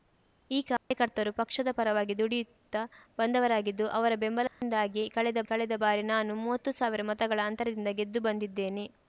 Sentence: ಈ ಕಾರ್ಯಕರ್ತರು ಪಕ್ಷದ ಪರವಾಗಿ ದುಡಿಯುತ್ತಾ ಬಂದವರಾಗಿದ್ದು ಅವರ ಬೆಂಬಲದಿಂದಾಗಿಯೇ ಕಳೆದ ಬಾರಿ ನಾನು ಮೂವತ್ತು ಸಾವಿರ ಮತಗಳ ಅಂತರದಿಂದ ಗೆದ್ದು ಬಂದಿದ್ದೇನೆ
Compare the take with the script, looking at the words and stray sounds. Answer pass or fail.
fail